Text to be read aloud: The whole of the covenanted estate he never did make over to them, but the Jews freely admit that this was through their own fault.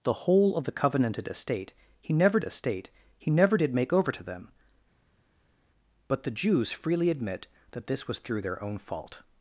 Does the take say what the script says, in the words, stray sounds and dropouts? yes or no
no